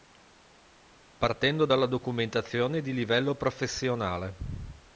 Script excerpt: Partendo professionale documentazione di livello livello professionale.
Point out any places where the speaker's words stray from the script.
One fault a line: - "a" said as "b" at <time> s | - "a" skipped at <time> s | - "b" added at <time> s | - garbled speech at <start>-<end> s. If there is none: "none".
- "professionale" said as "dalla" at 1.6 s
- "livello" skipped at 3.3 s